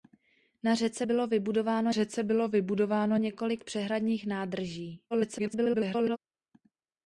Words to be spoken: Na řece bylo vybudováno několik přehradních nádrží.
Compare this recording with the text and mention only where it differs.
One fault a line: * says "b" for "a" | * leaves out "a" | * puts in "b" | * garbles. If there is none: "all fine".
* puts in "řece bylo vybudováno"
* garbles